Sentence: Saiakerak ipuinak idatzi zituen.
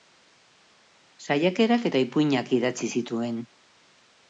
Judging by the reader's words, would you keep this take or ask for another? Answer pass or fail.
fail